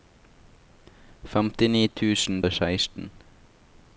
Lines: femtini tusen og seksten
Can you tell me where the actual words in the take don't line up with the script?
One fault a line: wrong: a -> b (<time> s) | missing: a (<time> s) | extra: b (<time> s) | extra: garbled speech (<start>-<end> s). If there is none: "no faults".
no faults